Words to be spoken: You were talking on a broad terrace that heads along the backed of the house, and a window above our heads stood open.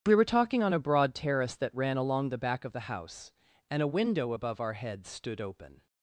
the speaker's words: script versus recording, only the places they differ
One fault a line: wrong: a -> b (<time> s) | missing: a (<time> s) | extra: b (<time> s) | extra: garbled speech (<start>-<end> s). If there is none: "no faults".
wrong: You -> We (0.0 s)
wrong: heads -> ran (1.8 s)
wrong: backed -> back (2.4 s)